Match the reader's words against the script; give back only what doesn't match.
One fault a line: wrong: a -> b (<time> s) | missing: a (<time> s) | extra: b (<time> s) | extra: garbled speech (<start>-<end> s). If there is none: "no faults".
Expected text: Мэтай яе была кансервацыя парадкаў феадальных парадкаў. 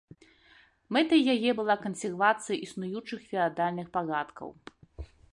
wrong: парадкаў -> існуючых (2.7 s)